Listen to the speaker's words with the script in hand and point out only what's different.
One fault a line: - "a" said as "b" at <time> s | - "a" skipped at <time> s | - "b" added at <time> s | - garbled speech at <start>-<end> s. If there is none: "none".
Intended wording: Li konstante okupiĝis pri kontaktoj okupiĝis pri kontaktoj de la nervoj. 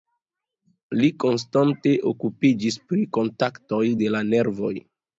- "okupiĝis pri kontaktoj" skipped at 3.9 s